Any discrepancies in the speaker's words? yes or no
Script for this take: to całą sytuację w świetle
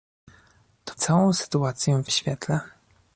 no